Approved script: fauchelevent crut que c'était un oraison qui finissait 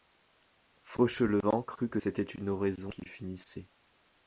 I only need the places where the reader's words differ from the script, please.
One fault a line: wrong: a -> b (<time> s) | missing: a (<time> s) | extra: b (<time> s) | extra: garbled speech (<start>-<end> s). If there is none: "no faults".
wrong: un -> une (2.2 s)